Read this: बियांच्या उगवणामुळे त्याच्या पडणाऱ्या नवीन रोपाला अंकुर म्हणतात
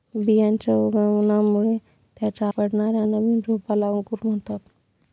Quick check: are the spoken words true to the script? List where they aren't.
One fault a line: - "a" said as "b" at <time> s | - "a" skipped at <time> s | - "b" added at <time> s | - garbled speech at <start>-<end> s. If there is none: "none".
none